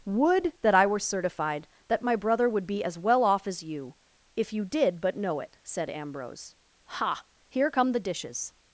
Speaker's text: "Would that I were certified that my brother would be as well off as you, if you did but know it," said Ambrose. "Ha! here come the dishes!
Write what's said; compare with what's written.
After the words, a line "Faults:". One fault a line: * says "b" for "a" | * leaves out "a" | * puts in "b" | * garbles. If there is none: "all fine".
"Would that I were certified that my brother would be as well off as you, if you did but know it," said Ambrose. "Ha! here come the dishes!
Faults:
all fine